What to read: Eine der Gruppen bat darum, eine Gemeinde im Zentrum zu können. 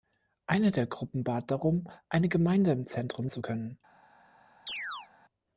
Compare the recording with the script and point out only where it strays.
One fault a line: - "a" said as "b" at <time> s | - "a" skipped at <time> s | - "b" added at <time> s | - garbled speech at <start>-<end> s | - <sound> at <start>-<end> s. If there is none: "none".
- chirp at 4.7-5.1 s